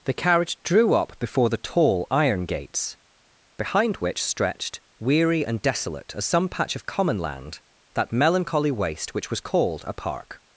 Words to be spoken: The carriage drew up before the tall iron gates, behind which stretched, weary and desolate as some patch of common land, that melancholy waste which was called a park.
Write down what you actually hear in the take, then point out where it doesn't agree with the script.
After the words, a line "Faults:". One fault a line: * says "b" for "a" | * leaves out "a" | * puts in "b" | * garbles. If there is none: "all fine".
The carriage drew up before the tall iron gates, behind which stretched, weary and desolate as some patch of common land, that melancholy waste which was called a park.
Faults:
all fine